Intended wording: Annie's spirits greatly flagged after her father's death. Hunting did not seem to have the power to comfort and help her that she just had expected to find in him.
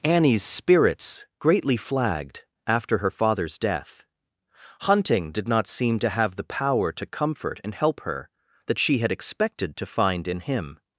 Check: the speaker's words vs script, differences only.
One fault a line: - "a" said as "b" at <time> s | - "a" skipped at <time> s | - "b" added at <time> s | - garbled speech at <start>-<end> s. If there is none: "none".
- "just" skipped at 9.0 s